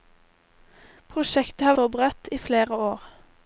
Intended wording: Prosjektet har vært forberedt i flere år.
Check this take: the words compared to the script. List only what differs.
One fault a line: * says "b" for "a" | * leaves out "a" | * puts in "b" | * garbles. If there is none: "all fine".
* leaves out "vært"